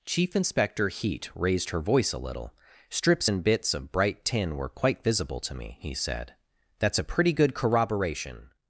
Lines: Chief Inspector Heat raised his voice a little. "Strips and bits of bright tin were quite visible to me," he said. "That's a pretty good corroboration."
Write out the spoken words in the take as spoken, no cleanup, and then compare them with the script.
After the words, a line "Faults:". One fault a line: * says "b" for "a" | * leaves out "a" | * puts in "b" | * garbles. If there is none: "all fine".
Chief Inspector Heat raised her voice a little. "Strips and bits of bright tin were quite visible to me," he said. "That's a pretty good corroboration."
Faults:
* says "her" for "his"